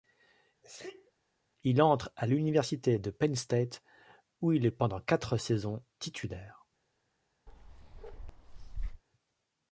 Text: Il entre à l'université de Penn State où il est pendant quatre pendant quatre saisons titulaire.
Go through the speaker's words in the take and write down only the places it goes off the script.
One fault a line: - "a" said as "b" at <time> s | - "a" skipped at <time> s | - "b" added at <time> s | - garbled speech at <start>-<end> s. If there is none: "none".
- "pendant quatre" skipped at 5.4 s